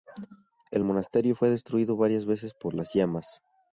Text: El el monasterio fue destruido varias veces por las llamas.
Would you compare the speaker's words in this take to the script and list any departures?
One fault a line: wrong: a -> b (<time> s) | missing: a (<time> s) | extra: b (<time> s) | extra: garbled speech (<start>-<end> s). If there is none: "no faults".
missing: el (0.8 s)